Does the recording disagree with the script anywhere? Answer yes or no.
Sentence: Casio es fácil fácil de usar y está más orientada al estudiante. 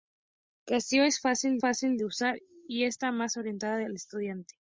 no